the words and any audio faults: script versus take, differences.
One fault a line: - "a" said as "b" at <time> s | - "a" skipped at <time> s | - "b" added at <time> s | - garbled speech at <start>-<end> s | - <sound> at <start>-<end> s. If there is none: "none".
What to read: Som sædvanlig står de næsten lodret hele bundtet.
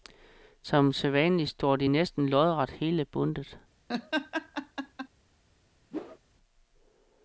- laugh at 3.9-5.1 s
- whoosh at 5.9-6.2 s